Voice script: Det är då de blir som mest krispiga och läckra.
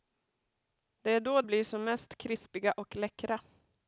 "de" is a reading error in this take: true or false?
true